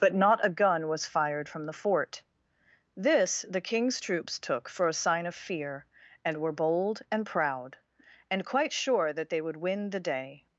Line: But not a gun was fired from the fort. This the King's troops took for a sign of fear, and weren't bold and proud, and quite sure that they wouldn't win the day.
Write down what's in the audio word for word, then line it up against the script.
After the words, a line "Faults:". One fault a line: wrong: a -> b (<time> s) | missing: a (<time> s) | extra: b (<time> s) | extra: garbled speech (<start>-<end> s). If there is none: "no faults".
But not a gun was fired from the fort. This the King's troops took for a sign of fear, and were bold and proud, and quite sure that they would win the day.
Faults:
wrong: weren't -> were (6.4 s)
wrong: wouldn't -> would (9.4 s)